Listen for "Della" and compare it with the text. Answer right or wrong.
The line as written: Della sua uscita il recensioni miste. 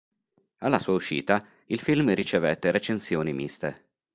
wrong